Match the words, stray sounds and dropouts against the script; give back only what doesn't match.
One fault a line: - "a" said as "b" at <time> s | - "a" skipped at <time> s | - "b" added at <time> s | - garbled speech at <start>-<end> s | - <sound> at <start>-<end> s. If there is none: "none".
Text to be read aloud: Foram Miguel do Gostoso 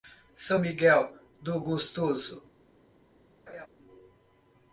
- "Foram" said as "São" at 0.3 s
- laugh at 3.5-3.7 s